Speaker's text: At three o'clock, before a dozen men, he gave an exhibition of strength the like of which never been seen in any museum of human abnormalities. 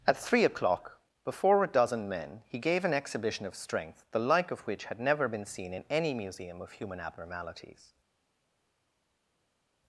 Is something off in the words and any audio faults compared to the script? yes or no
yes